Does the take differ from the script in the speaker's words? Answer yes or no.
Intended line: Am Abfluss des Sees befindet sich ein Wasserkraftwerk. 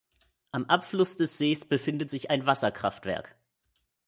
no